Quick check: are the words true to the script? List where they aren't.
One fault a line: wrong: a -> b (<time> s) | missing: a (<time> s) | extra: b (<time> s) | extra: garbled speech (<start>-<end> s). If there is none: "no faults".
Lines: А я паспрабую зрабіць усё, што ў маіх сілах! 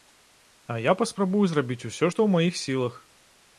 no faults